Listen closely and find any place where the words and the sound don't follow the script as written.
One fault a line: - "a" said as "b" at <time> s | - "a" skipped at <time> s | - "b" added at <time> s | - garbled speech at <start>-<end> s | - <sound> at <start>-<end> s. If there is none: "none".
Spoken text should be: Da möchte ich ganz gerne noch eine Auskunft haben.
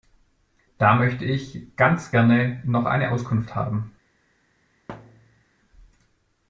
- thud at 4.9-5.4 s